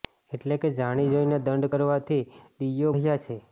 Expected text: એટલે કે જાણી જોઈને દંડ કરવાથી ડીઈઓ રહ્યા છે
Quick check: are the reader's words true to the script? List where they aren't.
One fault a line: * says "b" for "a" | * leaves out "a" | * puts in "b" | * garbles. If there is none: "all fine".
all fine